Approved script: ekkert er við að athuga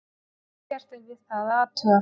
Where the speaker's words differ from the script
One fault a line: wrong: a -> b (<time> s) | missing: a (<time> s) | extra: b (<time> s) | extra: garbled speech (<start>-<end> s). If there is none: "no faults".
extra: það (1.3 s)